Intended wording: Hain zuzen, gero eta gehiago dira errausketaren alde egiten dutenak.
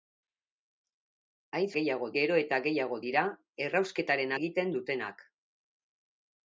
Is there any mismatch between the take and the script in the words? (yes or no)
yes